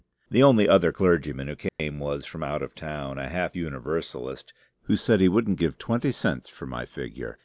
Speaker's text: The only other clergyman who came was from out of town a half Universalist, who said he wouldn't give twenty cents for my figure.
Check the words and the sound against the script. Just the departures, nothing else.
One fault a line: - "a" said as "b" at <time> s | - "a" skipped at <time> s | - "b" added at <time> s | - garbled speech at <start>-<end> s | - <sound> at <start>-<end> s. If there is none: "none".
- dropout at 1.7-1.8 s